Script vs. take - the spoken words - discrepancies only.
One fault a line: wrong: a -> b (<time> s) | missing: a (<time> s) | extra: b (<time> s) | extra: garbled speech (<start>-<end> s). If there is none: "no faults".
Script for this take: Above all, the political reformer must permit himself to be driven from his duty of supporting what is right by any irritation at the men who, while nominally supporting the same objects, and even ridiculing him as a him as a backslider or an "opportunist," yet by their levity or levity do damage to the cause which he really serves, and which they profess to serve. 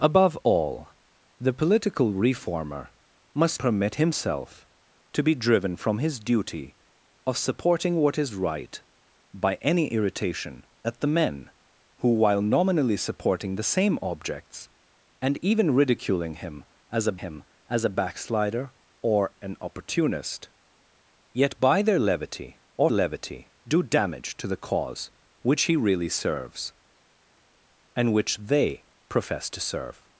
no faults